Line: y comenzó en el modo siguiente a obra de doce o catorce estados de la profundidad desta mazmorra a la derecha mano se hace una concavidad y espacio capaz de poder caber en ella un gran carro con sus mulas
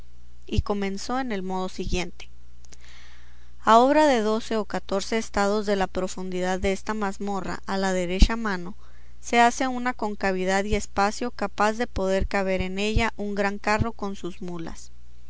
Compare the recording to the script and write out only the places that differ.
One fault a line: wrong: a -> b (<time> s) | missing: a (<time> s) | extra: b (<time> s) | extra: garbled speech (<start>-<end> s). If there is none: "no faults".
no faults